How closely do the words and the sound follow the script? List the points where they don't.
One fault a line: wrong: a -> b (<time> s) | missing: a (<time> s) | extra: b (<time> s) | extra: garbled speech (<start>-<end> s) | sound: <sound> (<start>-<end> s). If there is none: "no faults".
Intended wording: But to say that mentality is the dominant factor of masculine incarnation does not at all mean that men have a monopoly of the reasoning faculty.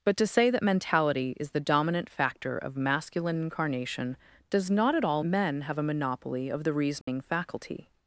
missing: mean that (5.2 s)
sound: dropout (7.0-7.1 s)